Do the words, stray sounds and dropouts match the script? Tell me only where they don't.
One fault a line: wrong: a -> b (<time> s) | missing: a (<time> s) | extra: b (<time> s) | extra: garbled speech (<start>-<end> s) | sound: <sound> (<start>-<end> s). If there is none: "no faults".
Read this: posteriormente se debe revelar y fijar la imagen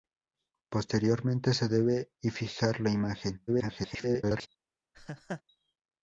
missing: revelar (2.1 s)
extra: garbled speech (3.5-4.5 s)
sound: laugh (4.9-5.4 s)